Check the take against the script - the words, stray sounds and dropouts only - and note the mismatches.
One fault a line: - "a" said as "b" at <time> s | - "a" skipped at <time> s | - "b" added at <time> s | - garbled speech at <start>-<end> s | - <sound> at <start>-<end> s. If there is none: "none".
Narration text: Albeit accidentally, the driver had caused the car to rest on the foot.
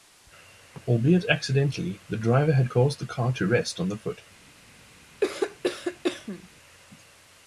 - cough at 5.2-6.5 s